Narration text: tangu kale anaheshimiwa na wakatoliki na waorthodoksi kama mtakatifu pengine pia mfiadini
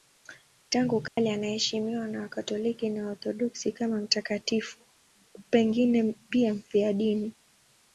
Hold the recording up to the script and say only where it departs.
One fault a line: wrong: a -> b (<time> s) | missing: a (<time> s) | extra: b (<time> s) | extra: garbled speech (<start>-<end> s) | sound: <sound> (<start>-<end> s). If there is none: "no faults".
sound: dropout (1.1-1.2 s)